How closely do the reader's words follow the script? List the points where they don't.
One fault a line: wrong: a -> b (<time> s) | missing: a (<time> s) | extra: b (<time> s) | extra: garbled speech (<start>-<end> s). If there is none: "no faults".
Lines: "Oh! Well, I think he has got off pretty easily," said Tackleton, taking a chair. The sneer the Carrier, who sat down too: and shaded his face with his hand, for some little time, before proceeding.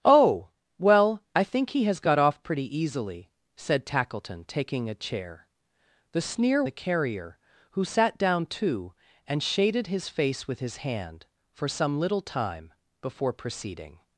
no faults